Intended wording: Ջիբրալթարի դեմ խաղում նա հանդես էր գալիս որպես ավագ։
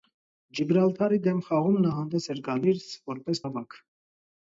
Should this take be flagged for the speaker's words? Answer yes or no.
no